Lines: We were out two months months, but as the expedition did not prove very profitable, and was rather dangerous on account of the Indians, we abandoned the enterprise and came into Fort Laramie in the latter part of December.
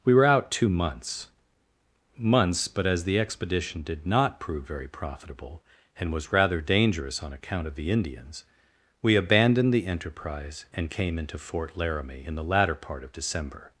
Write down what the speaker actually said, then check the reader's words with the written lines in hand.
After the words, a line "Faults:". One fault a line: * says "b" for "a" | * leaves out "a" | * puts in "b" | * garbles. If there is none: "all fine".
We were out two months months, but as the expedition did not prove very profitable, and was rather dangerous on account of the Indians, we abandoned the enterprise and came into Fort Laramie in the latter part of December.
Faults:
all fine